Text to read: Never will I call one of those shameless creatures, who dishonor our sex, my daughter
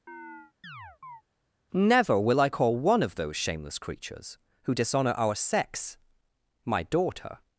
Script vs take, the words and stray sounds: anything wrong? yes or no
yes